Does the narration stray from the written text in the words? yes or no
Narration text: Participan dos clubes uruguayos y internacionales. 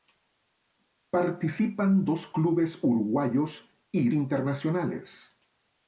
no